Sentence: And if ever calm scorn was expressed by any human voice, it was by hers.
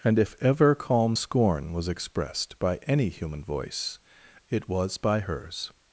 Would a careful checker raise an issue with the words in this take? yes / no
no